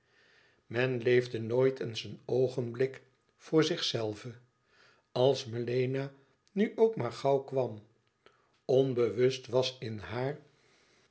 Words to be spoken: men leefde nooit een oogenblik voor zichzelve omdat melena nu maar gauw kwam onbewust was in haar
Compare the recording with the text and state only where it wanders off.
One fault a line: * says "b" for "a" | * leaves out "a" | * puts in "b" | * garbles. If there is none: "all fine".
* puts in "eens"
* says "als" for "omdat"
* puts in "ook"